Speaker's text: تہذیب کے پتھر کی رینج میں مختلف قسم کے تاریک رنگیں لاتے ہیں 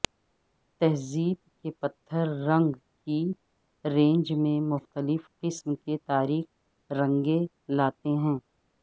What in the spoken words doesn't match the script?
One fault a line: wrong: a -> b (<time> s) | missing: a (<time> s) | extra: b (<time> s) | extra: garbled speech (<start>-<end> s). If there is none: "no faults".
extra: رنگ (2.5 s)